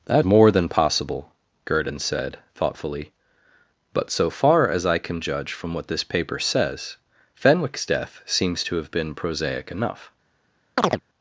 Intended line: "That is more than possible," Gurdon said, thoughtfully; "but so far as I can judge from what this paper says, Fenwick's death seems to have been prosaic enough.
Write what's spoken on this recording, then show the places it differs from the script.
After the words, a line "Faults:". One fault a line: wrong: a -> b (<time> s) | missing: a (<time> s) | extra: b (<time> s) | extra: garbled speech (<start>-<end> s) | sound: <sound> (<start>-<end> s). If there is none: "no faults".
"That more than possible," Gurdon said, thoughtfully; "but so far as I can judge from what this paper says, Fenwick's death seems to have been prosaic enough.
Faults:
missing: is (0.2 s)
sound: chirp (10.8-11.0 s)